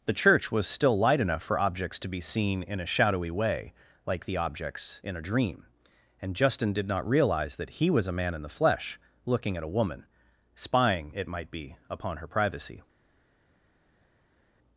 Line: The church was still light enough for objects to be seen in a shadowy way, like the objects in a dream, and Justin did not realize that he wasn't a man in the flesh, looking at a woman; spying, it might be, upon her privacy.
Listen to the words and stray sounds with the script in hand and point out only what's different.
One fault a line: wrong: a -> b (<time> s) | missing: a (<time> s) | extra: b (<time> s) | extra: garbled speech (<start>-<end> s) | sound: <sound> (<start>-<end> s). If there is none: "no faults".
wrong: wasn't -> was (7.9 s)